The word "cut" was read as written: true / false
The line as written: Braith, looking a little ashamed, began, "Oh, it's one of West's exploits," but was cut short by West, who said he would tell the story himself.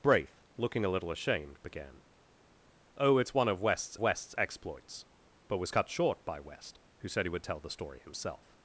true